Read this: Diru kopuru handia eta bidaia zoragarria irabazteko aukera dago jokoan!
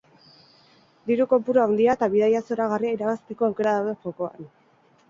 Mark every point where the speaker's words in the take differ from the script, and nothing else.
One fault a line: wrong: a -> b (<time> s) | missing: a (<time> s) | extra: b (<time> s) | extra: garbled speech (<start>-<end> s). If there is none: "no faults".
wrong: dago -> daude (3.8 s)